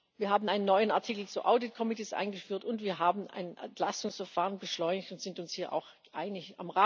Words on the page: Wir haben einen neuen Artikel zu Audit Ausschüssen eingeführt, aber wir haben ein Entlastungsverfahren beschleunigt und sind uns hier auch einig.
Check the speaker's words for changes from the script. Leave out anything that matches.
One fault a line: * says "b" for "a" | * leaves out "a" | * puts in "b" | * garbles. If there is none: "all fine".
* says "und" for "aber"